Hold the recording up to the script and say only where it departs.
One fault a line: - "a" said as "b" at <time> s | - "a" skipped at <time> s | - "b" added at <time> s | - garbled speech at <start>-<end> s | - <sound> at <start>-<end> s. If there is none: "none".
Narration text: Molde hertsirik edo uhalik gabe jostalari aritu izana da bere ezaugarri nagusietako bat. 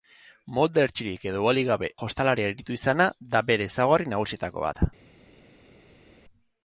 none